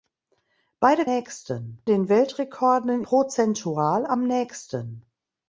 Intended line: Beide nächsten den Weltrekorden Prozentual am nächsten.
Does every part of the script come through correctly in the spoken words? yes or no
yes